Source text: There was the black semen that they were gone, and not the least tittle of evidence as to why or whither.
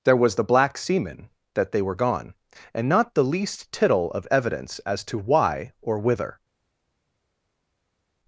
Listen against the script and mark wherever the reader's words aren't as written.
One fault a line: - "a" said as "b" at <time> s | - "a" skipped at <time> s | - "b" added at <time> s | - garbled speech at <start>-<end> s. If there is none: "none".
none